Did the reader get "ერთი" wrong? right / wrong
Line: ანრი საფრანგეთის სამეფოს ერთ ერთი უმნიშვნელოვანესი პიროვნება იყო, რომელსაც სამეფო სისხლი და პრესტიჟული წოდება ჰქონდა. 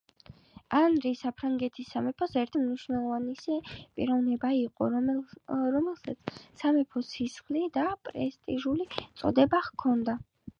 wrong